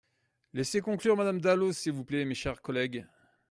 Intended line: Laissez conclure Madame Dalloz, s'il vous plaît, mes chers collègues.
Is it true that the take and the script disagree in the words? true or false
false